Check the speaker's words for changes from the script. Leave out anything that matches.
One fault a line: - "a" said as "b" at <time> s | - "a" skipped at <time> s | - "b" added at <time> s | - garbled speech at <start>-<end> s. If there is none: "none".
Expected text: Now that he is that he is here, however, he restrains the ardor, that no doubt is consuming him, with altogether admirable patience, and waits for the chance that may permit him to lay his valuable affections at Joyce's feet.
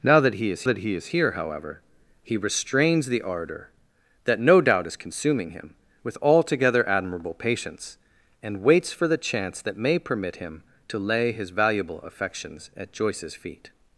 none